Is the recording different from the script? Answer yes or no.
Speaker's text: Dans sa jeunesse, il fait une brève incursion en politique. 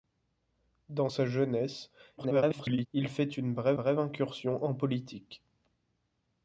yes